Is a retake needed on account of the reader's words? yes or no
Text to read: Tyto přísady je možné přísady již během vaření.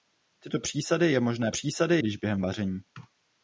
no